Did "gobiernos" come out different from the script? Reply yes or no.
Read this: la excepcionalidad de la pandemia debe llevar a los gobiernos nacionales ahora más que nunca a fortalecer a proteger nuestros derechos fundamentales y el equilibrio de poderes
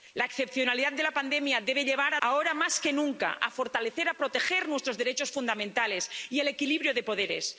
yes